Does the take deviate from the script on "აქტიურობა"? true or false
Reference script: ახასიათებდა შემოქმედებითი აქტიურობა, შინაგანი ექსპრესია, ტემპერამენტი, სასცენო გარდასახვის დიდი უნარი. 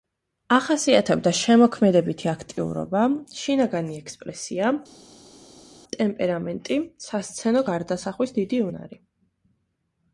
false